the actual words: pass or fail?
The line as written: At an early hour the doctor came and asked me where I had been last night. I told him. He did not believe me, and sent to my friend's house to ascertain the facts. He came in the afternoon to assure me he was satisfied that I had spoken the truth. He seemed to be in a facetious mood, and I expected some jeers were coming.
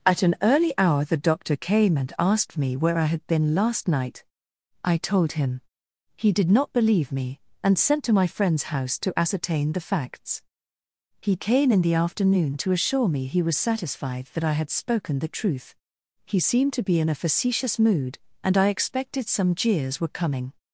pass